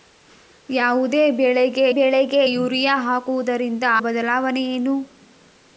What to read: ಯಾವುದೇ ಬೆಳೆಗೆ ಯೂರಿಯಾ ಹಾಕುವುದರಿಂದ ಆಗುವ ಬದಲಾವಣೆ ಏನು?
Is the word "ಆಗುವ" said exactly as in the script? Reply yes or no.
no